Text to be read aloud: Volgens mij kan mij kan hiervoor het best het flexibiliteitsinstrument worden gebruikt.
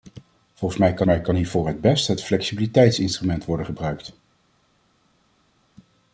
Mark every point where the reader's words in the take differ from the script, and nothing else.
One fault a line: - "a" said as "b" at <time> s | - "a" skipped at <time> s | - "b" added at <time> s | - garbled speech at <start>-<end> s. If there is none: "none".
none